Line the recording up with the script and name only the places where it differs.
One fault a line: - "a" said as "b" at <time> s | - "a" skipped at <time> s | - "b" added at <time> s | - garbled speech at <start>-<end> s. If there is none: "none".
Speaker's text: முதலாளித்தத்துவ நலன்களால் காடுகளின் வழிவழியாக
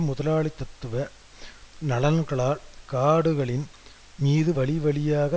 - "மீது" added at 4.2 s